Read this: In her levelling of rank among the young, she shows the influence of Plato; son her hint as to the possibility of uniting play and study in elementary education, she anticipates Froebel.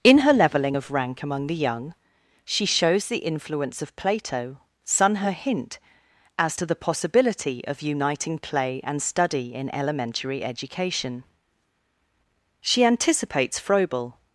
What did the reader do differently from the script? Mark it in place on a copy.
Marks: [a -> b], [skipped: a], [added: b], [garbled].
In her levelling of rank among the young, she shows the influence of Plato; son her hint as to the possibility of uniting play and study in elementary education, she anticipates Froebel.